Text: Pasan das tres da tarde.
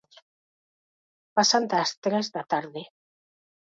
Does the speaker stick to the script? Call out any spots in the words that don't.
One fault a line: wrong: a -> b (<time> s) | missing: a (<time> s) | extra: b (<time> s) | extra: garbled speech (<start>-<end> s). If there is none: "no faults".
no faults